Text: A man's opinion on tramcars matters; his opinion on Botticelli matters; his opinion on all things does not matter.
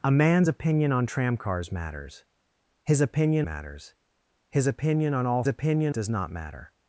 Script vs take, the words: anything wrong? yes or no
yes